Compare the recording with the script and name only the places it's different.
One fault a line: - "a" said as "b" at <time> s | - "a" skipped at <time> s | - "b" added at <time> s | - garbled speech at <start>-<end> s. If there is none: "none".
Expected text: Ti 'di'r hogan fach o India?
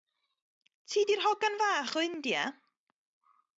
none